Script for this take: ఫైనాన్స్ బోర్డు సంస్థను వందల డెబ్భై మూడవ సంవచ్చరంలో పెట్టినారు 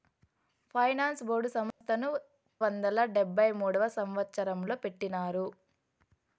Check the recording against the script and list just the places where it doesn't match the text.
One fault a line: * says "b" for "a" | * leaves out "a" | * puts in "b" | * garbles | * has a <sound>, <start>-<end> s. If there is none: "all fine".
* has a dropout, 1.7-1.8 s